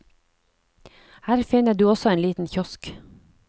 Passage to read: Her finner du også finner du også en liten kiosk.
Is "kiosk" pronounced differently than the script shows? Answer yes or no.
no